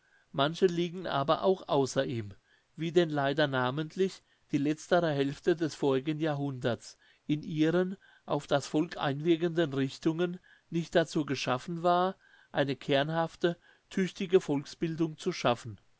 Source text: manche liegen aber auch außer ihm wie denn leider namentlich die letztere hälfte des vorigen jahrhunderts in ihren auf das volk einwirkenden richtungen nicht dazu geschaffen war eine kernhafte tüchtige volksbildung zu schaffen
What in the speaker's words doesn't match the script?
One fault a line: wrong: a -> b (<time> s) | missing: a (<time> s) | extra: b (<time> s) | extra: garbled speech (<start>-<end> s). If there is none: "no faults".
no faults